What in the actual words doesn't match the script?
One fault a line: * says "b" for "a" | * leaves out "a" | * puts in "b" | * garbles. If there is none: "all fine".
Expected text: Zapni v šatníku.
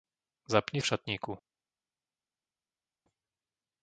all fine